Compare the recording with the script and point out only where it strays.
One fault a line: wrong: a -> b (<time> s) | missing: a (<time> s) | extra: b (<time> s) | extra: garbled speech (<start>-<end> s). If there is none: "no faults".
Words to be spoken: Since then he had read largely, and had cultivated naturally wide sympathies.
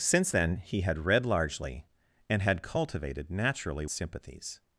missing: wide (3.8 s)